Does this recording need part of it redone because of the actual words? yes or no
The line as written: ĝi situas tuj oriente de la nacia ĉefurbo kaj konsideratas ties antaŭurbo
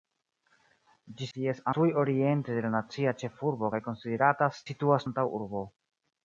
yes